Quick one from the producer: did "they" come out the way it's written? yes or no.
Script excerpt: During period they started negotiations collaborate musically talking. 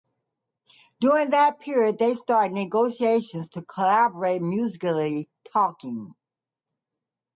yes